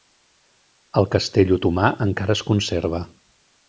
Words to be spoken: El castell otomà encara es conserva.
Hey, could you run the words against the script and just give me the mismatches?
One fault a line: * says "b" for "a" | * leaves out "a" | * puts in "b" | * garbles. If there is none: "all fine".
all fine